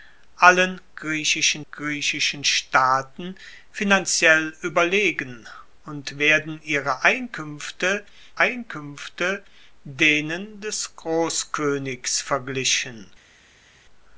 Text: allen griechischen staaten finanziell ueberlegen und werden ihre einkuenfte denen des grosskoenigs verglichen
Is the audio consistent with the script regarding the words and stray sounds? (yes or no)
no